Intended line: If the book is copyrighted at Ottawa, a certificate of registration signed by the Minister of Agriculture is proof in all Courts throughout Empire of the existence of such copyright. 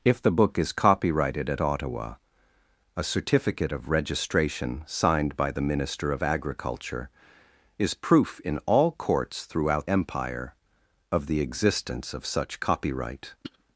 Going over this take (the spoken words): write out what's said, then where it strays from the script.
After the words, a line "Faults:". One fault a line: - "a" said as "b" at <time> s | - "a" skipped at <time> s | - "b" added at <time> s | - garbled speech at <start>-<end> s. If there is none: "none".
If the book is copyrighted at Ottawa, a certificate of registration signed by the Minister of Agriculture is proof in all Courts throughout Empire of the existence of such copyright.
Faults:
none